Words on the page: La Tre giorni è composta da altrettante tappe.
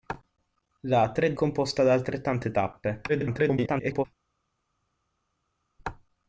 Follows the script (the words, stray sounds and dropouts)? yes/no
no